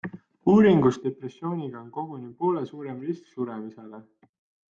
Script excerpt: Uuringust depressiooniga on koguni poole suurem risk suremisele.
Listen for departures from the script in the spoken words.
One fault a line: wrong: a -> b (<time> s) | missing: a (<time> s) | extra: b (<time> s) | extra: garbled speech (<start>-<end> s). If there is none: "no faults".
no faults